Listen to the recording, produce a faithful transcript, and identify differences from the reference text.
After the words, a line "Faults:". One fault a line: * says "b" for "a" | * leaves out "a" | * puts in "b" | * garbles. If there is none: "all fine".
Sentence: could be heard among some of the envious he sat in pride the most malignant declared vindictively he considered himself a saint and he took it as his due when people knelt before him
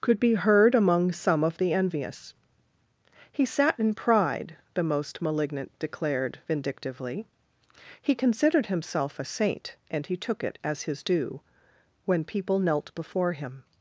could be heard among some of the envious he sat in pride the most malignant declared vindictively he considered himself a saint and he took it as his due when people knelt before him
Faults:
all fine